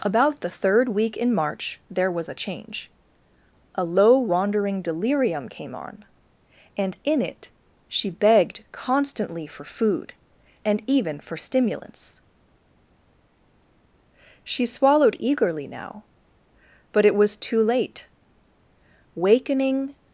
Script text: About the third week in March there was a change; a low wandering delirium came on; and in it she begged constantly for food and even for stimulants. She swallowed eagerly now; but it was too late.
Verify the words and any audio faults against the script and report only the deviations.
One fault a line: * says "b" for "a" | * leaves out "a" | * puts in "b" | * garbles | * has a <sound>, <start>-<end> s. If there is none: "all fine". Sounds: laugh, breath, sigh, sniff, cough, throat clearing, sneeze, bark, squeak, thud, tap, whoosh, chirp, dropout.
* puts in "Wakening"